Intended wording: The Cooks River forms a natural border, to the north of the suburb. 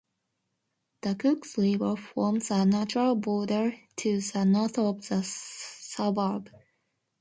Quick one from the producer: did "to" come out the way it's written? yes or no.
yes